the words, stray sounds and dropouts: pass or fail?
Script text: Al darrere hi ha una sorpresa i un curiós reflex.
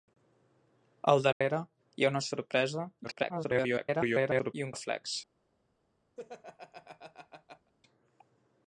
fail